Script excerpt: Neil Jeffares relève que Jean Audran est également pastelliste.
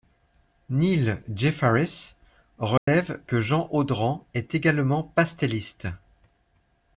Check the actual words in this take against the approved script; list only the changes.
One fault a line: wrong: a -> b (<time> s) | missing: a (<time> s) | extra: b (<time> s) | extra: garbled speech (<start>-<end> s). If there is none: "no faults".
no faults